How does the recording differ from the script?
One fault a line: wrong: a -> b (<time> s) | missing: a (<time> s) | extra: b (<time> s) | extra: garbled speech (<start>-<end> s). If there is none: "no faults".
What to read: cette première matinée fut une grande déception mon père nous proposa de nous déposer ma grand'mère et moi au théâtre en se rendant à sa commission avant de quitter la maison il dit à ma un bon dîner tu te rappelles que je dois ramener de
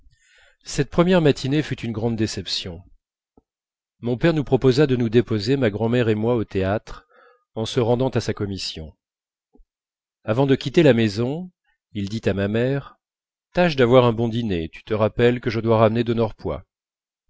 extra: mère tâche d'avoir (12.5 s)